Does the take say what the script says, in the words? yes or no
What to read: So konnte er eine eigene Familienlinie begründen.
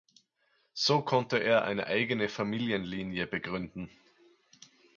yes